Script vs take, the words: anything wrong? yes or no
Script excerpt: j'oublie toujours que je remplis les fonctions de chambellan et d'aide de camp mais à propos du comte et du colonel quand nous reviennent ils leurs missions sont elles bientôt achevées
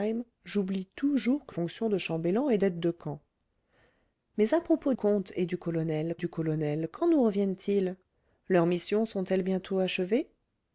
yes